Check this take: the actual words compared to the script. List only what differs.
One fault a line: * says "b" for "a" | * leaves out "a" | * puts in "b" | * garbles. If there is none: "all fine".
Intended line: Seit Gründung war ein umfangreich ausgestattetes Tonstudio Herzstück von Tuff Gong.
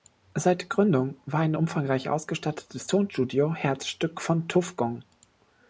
all fine